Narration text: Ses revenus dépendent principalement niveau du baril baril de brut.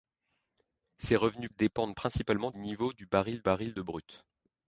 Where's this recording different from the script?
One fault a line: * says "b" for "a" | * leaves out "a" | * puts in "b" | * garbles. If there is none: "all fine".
all fine